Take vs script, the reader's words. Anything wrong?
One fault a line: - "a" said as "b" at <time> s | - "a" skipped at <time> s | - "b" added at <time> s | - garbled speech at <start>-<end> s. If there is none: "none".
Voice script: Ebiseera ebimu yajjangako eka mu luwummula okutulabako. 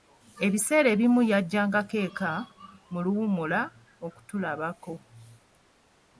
none